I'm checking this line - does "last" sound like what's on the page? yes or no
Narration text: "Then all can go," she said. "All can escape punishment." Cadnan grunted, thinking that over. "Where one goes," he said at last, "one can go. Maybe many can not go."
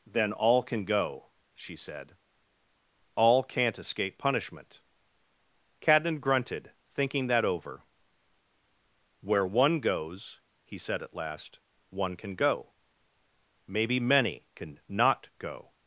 yes